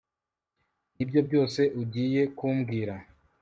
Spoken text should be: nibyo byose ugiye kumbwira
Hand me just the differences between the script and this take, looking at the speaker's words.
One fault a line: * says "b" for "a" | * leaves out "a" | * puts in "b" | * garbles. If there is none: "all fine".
all fine